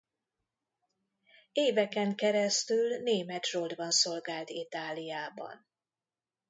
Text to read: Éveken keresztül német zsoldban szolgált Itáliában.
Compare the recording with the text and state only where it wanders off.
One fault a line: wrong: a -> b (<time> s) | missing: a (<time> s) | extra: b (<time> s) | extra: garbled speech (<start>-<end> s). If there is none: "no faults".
no faults